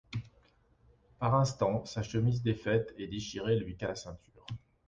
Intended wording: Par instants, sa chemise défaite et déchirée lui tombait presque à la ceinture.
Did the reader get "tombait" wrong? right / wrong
wrong